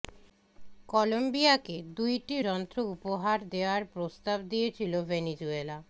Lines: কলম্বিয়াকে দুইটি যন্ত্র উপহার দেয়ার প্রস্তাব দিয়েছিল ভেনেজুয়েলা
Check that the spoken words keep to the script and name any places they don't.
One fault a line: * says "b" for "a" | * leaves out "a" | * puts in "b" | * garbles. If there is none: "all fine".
all fine